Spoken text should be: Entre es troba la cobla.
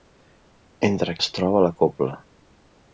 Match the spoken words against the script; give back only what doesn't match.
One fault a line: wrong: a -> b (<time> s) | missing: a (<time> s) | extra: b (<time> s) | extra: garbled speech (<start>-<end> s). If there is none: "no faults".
no faults